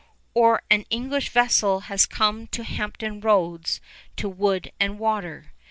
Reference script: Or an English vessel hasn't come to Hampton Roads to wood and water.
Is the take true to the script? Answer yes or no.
no